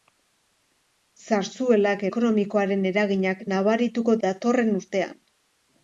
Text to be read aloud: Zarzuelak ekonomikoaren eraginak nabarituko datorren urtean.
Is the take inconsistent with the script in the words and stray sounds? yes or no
no